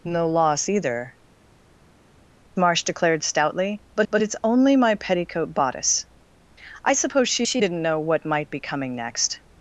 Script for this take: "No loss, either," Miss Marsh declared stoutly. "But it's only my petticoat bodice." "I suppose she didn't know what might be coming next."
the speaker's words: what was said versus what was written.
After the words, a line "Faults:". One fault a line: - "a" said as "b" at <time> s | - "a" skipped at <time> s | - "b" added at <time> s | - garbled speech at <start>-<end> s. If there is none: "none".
"No loss, either," Marsh declared stoutly. "But but it's only my petticoat bodice." "I suppose she she didn't know what might be coming next."
Faults:
- "Miss" skipped at 1.1 s
- "but" added at 4.1 s
- "she" added at 7.5 s